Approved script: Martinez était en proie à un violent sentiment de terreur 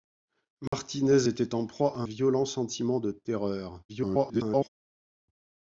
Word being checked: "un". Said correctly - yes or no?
no